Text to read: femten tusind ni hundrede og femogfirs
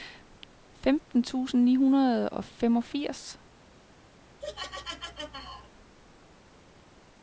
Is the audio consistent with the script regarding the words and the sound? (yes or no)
no